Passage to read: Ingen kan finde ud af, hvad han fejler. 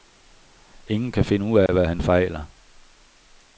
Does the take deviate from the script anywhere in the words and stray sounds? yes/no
yes